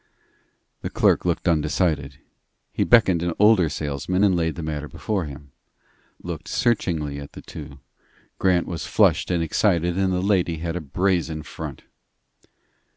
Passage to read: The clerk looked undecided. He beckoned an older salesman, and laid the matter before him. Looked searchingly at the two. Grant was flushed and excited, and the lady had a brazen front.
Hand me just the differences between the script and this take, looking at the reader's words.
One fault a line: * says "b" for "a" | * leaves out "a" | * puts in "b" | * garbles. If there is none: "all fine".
all fine